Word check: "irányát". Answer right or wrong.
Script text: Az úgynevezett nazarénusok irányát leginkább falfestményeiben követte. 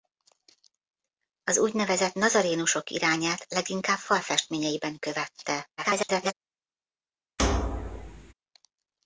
right